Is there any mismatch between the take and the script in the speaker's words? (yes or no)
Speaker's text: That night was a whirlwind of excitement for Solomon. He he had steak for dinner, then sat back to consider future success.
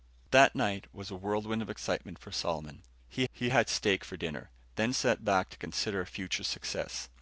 no